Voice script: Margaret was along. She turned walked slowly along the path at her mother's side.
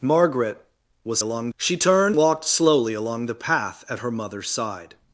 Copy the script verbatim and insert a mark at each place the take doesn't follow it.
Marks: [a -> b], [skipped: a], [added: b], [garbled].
Margaret was along. She turned walked slowly along the path at her mother's side.